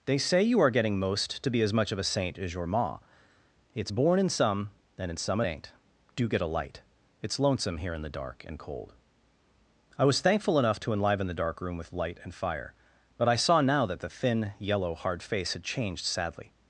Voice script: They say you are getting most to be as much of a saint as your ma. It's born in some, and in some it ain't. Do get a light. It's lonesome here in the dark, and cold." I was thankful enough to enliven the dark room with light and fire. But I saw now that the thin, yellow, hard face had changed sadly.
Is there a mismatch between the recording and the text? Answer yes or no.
no